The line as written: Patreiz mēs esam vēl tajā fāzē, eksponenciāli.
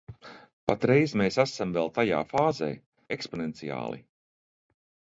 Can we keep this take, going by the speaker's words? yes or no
yes